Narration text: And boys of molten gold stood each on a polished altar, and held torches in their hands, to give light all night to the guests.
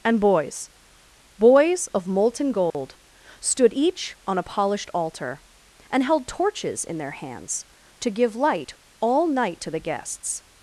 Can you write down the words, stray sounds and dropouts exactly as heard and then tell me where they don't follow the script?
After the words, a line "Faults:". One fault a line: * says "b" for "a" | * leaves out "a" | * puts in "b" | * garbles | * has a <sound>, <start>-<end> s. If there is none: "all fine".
And boys boys of molten gold stood each on a polished altar, and held torches in their hands, to give light all night to the guests.
Faults:
* puts in "boys"
* has a dropout, 2.7-2.7 s